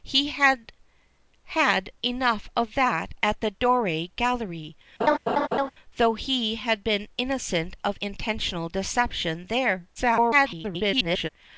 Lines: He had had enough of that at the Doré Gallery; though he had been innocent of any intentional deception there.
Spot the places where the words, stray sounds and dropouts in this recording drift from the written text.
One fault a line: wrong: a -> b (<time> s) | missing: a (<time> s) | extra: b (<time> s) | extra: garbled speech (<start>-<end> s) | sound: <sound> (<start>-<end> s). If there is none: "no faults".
sound: laugh (5.0-5.7 s)
missing: any (8.0 s)
extra: garbled speech (10.0-11.3 s)